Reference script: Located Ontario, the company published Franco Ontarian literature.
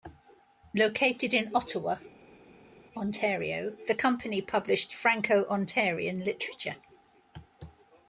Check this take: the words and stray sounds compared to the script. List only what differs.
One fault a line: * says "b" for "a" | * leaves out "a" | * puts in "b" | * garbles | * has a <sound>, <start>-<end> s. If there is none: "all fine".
* puts in "in Ottawa"